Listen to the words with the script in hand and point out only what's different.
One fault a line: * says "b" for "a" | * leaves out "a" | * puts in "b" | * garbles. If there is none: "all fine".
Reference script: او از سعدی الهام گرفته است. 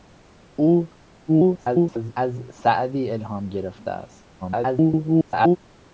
* garbles
* garbles